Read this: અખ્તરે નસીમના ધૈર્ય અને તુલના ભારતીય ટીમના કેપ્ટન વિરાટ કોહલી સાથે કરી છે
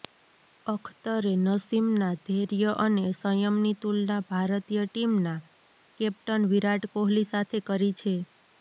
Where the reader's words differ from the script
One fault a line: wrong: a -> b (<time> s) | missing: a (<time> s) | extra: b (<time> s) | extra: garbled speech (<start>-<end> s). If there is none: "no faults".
extra: સંયમની (3.2 s)